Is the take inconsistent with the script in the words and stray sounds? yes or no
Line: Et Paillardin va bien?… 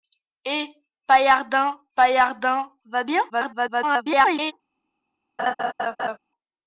yes